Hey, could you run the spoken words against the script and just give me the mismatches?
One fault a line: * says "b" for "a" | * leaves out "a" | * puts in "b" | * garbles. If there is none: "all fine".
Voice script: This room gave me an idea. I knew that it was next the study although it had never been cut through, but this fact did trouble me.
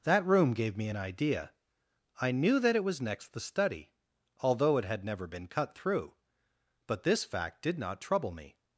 * says "That" for "This"
* puts in "not"